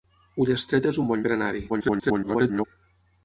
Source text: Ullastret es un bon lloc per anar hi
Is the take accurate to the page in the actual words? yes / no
no